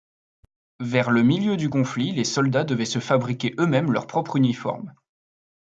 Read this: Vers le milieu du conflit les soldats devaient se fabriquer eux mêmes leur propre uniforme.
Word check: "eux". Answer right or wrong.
right